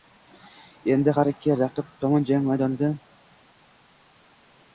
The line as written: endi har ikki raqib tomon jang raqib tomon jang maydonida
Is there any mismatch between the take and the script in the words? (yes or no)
yes